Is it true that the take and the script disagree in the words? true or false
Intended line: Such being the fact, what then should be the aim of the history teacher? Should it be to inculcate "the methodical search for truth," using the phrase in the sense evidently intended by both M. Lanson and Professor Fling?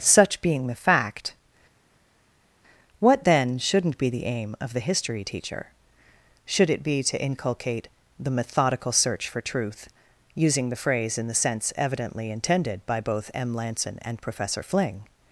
true